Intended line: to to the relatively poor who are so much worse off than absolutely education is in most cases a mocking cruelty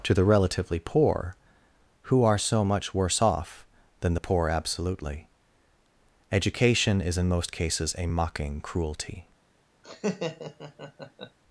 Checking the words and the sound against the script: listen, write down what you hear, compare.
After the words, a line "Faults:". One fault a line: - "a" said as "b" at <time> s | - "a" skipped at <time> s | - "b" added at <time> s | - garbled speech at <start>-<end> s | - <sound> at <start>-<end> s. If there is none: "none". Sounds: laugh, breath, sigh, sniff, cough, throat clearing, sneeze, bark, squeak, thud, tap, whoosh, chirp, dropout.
to the relatively poor who are so much worse off than the poor absolutely education is in most cases a mocking cruelty
Faults:
- "to" skipped at 0.1 s
- "the poor" added at 4.1 s
- laugh at 9.8-11.4 s